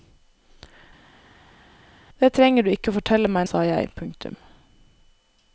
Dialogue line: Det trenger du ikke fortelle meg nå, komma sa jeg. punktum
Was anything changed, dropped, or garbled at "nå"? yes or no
yes